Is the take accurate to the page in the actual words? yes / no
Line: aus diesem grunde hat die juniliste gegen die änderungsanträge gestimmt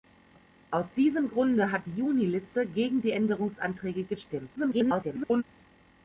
no